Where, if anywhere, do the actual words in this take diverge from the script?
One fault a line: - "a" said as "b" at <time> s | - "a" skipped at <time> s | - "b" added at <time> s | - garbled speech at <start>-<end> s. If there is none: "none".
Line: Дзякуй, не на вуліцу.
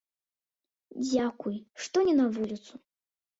- "што" added at 1.9 s